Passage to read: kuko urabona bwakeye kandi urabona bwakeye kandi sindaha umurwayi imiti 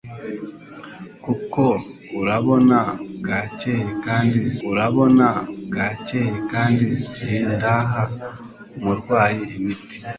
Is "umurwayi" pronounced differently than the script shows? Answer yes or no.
no